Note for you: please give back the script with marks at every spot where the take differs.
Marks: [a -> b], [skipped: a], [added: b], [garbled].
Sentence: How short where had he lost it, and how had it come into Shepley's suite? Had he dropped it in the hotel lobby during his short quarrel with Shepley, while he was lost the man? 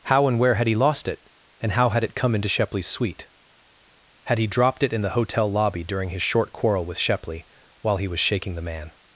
How [short -> and] where had he lost it, and how had it come into Shepley's suite? Had he dropped it in the hotel lobby during his short quarrel with Shepley, while he was [lost -> shaking] the man?